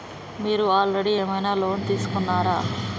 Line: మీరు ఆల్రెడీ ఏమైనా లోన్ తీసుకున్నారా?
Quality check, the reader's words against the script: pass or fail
pass